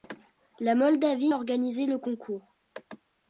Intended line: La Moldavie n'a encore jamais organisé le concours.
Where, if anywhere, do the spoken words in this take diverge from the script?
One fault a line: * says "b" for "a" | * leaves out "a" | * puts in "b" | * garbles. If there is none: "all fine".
* leaves out "n'a encore jamais"